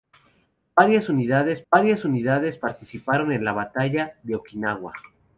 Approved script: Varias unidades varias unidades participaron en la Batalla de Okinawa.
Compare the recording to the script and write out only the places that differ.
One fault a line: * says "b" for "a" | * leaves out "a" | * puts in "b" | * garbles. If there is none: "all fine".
all fine